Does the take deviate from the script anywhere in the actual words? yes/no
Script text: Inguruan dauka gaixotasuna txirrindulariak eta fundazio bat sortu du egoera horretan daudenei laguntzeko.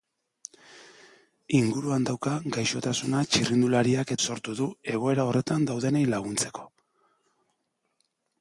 yes